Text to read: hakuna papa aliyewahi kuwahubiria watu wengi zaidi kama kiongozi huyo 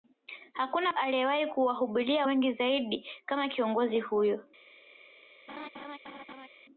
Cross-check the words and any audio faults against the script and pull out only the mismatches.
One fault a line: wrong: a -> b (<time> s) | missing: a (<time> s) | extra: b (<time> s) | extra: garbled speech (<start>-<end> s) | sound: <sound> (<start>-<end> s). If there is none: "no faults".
missing: papa (0.9 s)
missing: watu (2.3 s)
sound: laugh (5.5-6.5 s)